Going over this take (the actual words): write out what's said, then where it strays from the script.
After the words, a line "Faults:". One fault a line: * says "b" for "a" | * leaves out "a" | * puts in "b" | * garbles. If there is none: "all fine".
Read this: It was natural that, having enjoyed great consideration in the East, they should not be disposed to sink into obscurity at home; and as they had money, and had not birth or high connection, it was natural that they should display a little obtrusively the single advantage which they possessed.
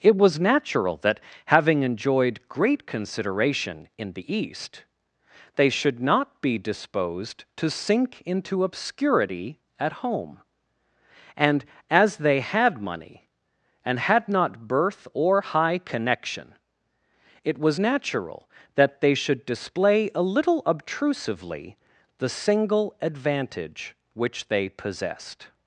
It was natural that, having enjoyed great consideration in the East, they should not be disposed to sink into obscurity at home; and as they had money, and had not birth or high connection, it was natural that they should display a little obtrusively the single advantage which they possessed.
Faults:
all fine